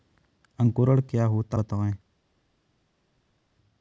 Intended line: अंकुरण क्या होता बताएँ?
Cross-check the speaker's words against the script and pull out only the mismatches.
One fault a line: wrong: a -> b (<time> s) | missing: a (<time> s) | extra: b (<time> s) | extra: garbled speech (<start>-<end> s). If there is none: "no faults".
no faults